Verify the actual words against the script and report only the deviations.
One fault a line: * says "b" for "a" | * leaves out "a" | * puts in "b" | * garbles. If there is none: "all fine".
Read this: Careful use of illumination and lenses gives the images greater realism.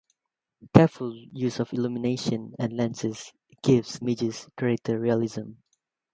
* leaves out "the"